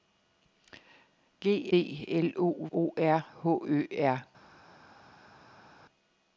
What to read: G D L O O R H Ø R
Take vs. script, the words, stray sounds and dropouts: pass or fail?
pass